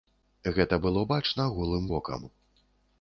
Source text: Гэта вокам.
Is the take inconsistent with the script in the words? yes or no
yes